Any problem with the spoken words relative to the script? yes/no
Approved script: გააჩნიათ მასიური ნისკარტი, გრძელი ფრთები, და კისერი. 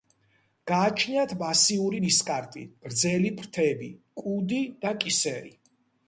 yes